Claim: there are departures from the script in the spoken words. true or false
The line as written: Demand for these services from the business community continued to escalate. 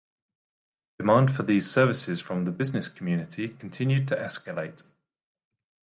false